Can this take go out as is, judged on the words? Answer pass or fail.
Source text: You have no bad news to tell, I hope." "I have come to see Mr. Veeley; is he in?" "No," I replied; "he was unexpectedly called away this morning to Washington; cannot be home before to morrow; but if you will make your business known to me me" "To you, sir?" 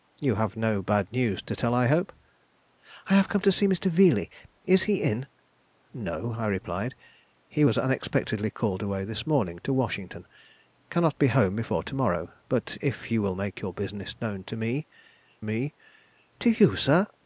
pass